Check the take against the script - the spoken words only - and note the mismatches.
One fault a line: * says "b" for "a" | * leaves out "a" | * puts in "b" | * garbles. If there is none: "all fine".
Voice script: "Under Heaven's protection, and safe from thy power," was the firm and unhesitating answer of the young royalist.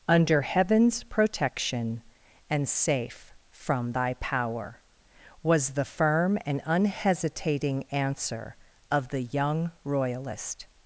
all fine